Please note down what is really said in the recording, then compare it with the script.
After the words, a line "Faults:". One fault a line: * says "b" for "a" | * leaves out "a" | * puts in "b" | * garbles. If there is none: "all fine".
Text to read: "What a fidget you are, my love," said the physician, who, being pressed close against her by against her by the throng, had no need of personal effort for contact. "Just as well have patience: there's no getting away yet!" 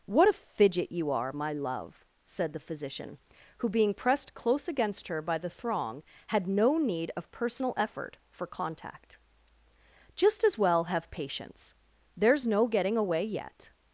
"What a fidget you are, my love," said the physician, who, being pressed close against her by the throng, had no need of personal effort for contact. "Just as well have patience: there's no getting away yet!"
Faults:
* leaves out "against her by"